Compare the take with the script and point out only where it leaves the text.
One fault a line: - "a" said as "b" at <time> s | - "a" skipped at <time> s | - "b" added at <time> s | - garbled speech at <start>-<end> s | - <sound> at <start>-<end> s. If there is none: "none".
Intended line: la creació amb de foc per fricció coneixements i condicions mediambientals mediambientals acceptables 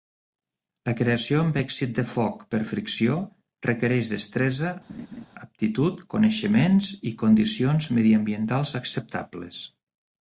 - "èxit" added at 1.6 s
- "requereix destresa aptitud" added at 3.7 s
- laugh at 4.9-5.3 s
- "mediambientals" skipped at 8.8 s